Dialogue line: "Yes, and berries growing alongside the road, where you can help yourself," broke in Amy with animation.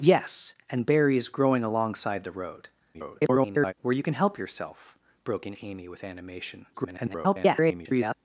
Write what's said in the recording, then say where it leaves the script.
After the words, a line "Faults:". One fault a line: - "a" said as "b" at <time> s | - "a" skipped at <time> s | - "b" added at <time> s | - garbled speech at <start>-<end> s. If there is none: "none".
"Yes, and berries growing alongside the road, [garbled] where you can help yourself," broke in Amy with animation. [garbled]
Faults:
- garbled speech at 2.9-3.7 s
- garbled speech at 6.7-8.1 s